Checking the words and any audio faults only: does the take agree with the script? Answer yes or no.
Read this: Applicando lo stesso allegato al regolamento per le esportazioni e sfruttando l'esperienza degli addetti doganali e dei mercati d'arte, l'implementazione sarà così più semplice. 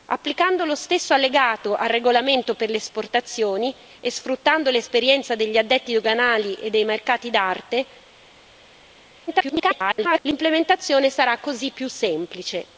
no